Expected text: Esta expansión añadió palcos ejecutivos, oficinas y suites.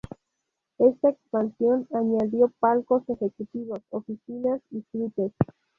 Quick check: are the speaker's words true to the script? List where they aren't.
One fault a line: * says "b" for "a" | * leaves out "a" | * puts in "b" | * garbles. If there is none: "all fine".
all fine